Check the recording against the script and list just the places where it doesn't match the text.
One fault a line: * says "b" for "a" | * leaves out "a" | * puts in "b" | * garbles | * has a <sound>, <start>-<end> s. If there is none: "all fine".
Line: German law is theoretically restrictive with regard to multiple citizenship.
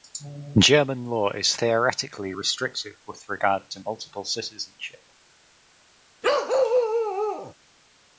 * has a bark, 6.2-7.5 s